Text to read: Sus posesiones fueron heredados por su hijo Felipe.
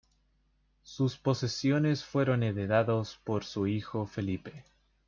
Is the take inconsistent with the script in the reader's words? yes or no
no